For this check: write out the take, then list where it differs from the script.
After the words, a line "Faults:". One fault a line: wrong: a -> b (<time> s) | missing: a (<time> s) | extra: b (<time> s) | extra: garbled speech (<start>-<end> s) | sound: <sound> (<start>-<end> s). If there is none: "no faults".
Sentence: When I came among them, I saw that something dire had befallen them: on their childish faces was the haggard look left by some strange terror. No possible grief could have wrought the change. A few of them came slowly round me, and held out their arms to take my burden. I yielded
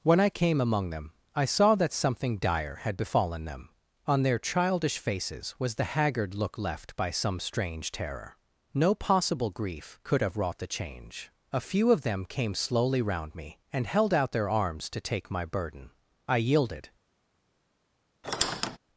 When I came among them, I saw that something dire had befallen them: on their childish faces was the haggard look left by some strange terror. No possible grief could have wrought the change. A few of them came slowly round me, and held out their arms to take my burden. I yielded
Faults:
sound: squeak (18.2-18.8 s)